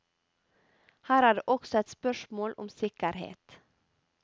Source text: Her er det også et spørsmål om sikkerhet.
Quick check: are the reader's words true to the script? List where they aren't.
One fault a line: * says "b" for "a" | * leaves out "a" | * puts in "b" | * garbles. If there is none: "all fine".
all fine